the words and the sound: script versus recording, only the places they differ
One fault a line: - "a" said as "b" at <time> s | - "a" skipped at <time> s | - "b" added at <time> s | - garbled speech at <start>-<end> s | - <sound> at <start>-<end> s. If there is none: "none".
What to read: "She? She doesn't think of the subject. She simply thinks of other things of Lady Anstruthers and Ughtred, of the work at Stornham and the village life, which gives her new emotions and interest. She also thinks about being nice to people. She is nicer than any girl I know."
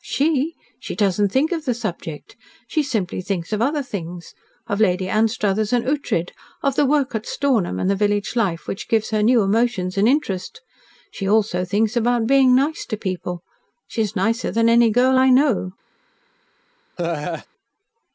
- laugh at 17.0-17.5 s